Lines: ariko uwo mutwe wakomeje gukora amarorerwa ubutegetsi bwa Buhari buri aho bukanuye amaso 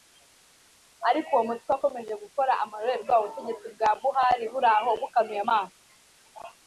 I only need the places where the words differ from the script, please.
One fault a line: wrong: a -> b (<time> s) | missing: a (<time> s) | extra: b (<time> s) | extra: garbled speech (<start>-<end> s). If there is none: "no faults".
no faults